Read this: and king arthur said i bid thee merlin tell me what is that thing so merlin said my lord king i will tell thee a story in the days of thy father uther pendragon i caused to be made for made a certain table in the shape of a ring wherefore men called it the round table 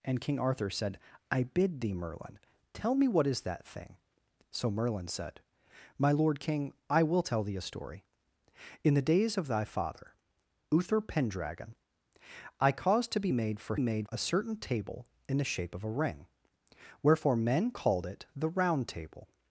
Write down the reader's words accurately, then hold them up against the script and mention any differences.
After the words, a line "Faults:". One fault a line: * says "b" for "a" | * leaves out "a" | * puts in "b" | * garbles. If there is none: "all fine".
and king arthur said i bid thee merlin tell me what is that thing so merlin said my lord king i will tell thee a story in the days of thy father uther pendragon i caused to be made for made a certain table in the shape of a ring wherefore men called it the round table
Faults:
all fine